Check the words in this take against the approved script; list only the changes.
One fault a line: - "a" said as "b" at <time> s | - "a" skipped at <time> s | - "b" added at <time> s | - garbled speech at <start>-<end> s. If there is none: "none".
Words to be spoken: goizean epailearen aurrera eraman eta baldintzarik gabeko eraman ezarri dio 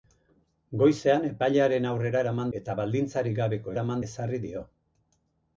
none